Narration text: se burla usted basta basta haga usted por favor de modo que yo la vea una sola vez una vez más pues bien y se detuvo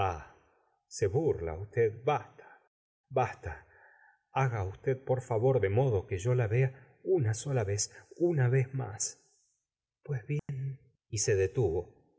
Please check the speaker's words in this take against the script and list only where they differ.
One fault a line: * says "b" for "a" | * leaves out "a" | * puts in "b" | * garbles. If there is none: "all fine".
all fine